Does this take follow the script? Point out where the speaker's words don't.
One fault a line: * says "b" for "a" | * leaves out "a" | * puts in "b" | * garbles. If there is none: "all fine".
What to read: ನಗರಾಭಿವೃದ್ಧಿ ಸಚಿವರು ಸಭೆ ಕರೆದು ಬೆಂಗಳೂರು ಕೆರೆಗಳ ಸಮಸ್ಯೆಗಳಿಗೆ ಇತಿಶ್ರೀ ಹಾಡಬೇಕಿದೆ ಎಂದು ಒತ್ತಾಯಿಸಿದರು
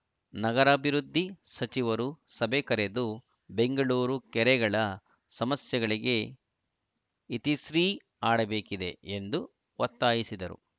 all fine